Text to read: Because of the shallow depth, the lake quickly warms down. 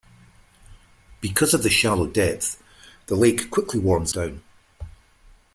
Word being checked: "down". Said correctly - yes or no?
yes